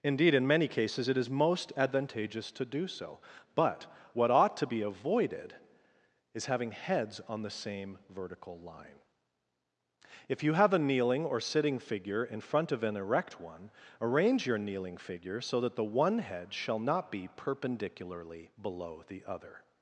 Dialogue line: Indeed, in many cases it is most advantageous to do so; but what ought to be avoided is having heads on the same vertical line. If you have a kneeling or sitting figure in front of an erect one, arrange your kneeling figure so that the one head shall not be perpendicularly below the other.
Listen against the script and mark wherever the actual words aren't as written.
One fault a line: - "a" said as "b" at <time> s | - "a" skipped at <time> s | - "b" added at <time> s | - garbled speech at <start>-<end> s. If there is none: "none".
none